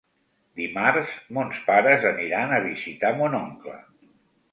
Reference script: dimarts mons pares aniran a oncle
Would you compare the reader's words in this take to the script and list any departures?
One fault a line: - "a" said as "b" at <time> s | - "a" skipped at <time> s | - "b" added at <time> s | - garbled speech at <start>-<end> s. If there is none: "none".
- "visitar mon" added at 2.7 s